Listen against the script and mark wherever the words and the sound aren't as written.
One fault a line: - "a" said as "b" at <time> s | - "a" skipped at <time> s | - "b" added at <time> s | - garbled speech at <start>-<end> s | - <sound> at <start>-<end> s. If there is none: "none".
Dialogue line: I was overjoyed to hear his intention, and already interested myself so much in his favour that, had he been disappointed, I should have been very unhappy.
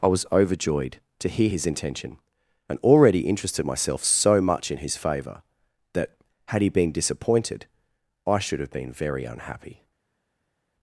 none